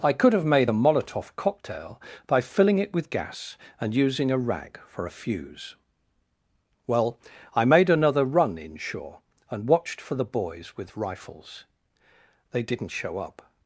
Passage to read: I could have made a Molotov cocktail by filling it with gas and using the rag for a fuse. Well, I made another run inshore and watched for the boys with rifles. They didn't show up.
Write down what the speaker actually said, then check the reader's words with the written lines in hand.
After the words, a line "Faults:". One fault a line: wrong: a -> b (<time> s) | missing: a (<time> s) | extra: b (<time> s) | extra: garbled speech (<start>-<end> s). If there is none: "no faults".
I could have made a Molotov cocktail by filling it with gas and using a rag for a fuse. Well, I made another run inshore and watched for the boys with rifles. They didn't show up.
Faults:
wrong: the -> a (4.3 s)